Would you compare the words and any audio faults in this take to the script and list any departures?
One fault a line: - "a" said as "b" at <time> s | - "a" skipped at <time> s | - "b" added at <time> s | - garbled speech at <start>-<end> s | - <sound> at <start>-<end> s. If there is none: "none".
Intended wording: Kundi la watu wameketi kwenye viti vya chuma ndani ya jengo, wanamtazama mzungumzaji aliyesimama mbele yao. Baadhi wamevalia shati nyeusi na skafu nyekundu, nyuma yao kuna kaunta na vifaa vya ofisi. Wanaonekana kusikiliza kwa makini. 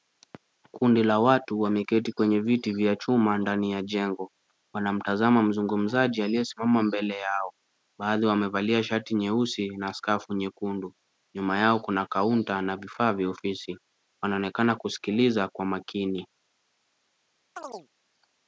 - chirp at 17.6-17.9 s